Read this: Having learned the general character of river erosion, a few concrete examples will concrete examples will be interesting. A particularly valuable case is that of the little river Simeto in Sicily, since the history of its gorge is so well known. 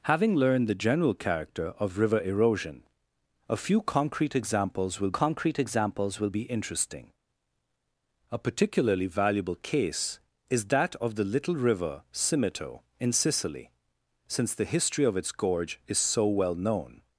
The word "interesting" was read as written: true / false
true